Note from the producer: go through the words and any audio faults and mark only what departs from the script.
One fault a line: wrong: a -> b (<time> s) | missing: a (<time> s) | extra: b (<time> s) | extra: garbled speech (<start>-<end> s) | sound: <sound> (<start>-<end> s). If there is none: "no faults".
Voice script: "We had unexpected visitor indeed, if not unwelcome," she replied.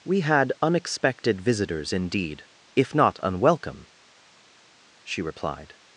wrong: visitor -> visitors (1.4 s)